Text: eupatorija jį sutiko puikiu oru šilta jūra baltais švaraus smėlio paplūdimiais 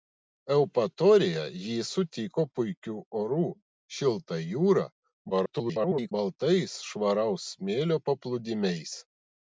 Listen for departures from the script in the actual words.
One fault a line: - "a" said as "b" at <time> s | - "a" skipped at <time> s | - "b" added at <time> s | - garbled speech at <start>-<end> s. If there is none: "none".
- garbled speech at 5.3-6.1 s